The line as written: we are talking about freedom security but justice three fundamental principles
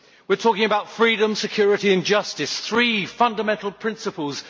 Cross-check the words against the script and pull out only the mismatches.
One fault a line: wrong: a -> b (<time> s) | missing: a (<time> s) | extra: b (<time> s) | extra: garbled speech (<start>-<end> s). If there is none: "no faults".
wrong: but -> and (1.9 s)